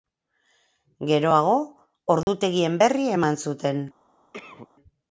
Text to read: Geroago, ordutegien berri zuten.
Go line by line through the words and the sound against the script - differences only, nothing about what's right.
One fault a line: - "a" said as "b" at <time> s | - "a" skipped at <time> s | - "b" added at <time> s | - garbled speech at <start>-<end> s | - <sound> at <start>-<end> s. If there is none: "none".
- dropout at 2.2-2.3 s
- "eman" added at 3.2 s
- cough at 4.3-4.7 s